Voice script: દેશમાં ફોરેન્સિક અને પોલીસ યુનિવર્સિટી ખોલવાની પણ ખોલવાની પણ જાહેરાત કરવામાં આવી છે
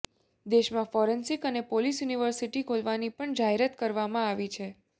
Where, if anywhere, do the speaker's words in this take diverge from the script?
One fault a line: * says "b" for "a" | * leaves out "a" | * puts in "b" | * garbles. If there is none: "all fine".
* leaves out "ખોલવાની પણ"